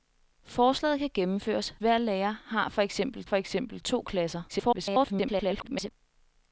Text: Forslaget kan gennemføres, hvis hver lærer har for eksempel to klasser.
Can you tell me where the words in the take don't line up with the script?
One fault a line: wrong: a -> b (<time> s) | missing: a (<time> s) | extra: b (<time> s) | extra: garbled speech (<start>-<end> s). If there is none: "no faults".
missing: hvis (1.8 s)
extra: for eksempel (3.2 s)
extra: garbled speech (4.5-5.9 s)